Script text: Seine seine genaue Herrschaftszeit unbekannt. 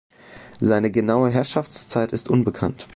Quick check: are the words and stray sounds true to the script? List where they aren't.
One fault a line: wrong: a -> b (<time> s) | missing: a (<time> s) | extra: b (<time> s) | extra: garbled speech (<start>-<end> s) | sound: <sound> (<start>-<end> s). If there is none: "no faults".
missing: seine (0.9 s)
extra: ist (2.1 s)